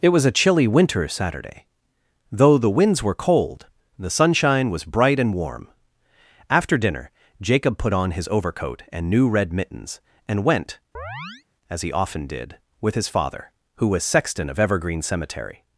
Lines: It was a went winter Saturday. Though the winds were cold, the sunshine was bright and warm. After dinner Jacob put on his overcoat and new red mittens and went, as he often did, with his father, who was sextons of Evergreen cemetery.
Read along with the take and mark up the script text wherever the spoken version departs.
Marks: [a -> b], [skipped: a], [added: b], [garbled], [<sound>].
It was a [went -> chilly] winter Saturday. Though the winds were cold, the sunshine was bright and warm. After dinner Jacob put on his overcoat and new red mittens and went, [chirp] as he often did, with his father, who was [sextons -> sexton] of Evergreen cemetery.